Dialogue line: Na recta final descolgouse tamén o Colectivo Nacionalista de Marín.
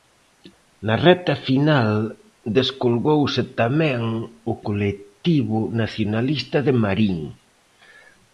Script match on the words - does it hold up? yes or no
yes